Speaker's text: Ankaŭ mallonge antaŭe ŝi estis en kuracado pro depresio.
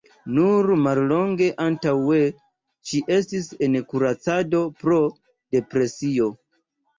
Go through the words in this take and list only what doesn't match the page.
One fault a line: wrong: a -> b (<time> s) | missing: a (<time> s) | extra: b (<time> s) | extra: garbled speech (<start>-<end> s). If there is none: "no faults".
wrong: Ankaŭ -> Nur (0.3 s)